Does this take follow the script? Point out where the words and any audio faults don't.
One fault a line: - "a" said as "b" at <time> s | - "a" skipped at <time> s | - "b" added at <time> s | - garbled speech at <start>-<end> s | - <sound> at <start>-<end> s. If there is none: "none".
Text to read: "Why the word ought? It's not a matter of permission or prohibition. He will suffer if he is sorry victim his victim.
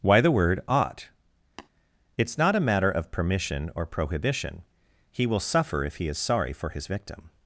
- tap at 1.6-1.7 s
- "victim" said as "for" at 6.5 s